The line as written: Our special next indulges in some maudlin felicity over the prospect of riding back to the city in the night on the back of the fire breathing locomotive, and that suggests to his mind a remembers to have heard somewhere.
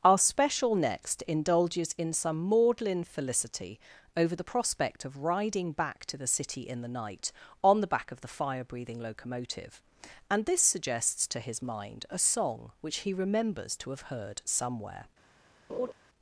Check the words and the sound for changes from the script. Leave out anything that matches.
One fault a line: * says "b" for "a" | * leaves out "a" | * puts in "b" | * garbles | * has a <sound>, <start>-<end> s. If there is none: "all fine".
* says "this" for "that"
* puts in "song which he"
* has a laugh, 15.7-15.9 s